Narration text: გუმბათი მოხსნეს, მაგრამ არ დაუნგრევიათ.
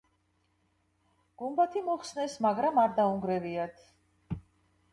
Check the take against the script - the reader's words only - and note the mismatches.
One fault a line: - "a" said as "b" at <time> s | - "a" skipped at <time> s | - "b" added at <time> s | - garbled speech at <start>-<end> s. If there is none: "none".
none